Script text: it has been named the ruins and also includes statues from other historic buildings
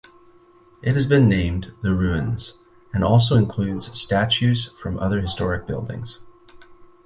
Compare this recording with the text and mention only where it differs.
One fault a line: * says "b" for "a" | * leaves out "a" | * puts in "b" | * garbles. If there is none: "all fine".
all fine